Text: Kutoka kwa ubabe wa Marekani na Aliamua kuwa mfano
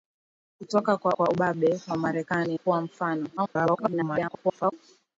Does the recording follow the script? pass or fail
fail